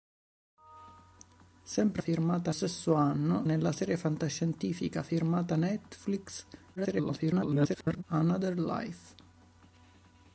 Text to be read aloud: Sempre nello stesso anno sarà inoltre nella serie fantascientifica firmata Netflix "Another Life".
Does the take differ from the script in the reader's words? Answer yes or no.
yes